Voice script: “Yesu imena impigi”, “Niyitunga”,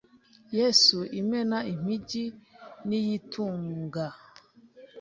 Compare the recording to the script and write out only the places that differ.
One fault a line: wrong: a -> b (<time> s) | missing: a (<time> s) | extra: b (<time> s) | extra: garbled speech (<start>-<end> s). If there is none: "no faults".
no faults